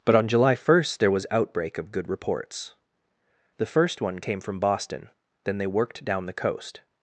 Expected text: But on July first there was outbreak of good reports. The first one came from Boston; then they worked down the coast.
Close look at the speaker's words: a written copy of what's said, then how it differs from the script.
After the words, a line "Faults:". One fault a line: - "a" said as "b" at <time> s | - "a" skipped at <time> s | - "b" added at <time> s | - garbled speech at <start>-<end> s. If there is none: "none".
But on July first there was outbreak of good reports. The first one came from Boston; then they worked down the coast.
Faults:
none